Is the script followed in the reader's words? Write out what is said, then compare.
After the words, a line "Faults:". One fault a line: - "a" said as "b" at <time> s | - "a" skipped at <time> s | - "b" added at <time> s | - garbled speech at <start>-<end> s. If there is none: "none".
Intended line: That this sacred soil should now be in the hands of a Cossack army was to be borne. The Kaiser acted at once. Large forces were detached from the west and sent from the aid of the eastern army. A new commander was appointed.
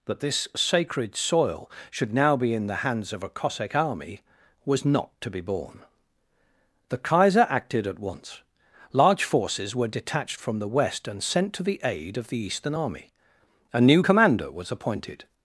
That this sacred soil should now be in the hands of a Cossack army was not to be borne. The Kaiser acted at once. Large forces were detached from the west and sent to the aid of the eastern army. A new commander was appointed.
Faults:
- "not" added at 4.8 s
- "from" said as "to" at 11.5 s